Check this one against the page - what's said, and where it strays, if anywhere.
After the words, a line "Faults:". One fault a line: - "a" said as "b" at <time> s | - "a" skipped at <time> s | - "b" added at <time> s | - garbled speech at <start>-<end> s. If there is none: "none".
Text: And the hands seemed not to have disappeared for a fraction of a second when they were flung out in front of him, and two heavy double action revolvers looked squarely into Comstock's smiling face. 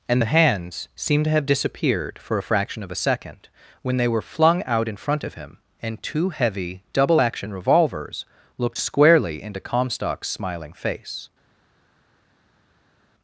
And the hands seemed to have disappeared for a fraction of a second when they were flung out in front of him, and two heavy double action revolvers looked squarely into Comstock's smiling face.
Faults:
- "not" skipped at 1.3 s